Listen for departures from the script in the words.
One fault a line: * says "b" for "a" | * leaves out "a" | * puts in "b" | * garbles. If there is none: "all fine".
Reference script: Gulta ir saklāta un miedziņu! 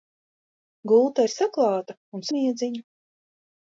all fine